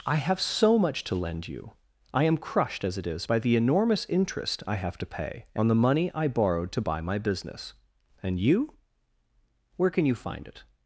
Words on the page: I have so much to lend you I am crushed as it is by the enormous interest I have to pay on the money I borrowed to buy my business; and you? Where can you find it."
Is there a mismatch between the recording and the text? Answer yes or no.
no